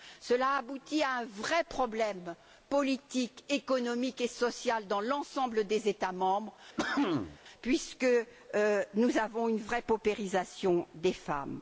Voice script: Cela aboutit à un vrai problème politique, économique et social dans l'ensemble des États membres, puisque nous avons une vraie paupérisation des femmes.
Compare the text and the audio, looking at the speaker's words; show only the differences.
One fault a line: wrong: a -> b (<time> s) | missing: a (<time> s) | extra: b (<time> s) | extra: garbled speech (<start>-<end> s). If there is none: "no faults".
no faults